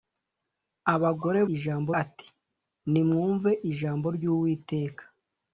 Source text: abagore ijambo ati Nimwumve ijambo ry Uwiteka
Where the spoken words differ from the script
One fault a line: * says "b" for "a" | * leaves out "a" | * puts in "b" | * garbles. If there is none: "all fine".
all fine